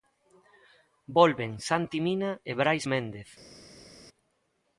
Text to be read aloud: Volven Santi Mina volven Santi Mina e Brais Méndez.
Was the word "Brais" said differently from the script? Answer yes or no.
no